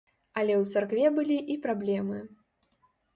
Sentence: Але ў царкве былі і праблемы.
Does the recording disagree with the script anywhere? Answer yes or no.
no